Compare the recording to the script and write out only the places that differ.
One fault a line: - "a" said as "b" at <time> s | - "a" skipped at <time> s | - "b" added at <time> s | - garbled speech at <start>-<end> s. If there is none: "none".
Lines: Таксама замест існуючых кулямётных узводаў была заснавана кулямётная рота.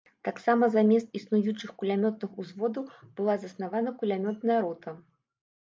none